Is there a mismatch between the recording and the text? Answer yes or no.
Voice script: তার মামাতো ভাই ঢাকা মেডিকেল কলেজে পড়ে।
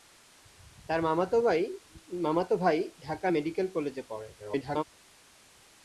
yes